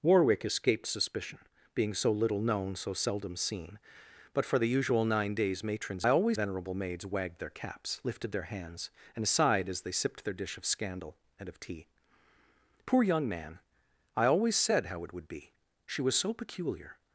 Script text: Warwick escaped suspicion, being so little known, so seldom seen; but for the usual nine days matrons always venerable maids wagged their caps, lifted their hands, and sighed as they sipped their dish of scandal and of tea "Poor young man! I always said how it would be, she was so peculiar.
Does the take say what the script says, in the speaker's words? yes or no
yes